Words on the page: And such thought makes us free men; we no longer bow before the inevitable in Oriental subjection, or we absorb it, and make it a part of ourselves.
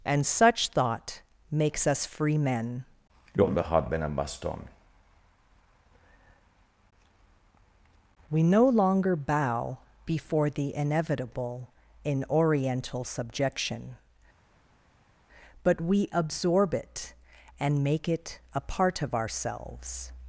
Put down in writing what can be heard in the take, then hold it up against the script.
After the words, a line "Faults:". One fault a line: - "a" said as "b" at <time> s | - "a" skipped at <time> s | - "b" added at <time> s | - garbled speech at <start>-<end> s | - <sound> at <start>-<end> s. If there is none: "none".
And such thought makes us free men; we no longer bow before the inevitable in Oriental subjection, but we absorb it, and make it a part of ourselves.
Faults:
- "or" said as "but" at 15.6 s